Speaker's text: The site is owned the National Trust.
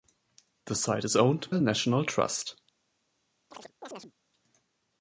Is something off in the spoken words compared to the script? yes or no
no